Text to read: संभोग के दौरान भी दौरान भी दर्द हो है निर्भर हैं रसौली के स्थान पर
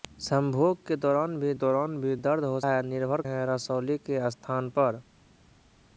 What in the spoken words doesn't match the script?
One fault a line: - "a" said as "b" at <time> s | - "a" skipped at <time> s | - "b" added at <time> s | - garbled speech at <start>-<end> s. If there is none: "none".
none